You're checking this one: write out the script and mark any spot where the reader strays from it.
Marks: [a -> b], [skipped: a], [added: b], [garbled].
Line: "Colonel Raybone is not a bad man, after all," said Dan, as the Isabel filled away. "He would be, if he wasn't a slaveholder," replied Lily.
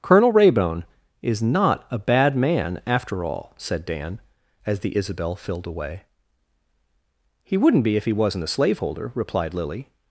"Colonel Raybone is not a bad man, after all," said Dan, as the Isabel filled away. "He [would -> wouldn't] be, if he wasn't a slaveholder," replied Lily.